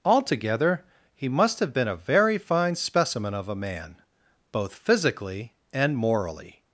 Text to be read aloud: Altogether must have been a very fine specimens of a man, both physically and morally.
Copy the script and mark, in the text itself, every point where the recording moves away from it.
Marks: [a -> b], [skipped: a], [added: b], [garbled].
Altogether [added: he] must have been a very fine [specimens -> specimen] of a man, both physically and morally.